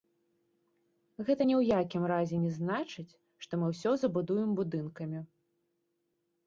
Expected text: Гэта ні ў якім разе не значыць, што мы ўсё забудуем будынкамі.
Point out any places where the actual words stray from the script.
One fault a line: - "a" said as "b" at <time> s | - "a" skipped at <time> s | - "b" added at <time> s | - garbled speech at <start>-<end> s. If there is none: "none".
none